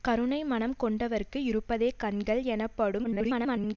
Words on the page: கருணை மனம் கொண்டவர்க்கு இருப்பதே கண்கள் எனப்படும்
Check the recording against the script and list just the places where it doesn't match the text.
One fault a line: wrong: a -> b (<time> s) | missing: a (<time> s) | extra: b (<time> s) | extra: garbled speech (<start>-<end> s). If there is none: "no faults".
extra: garbled speech (3.0-3.8 s)